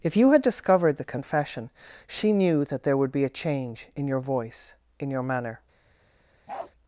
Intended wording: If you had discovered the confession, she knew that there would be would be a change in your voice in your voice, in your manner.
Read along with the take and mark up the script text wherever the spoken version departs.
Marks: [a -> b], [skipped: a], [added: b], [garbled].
If you had discovered the confession, she knew that there would be [skipped: would be] a change in your voice in your [skipped: voice, in your] manner.